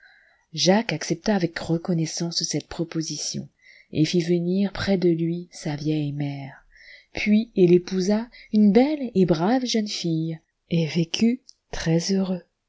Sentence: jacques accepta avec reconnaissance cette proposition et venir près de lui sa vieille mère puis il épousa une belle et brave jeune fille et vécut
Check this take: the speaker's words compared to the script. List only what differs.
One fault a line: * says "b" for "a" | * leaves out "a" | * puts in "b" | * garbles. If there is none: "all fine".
* puts in "fit"